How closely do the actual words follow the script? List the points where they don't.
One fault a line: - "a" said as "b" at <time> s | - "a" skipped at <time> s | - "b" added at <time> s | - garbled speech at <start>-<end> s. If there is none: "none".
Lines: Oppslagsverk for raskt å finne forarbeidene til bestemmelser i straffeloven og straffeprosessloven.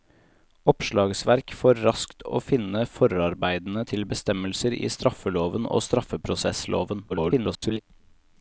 - garbled speech at 7.1-7.8 s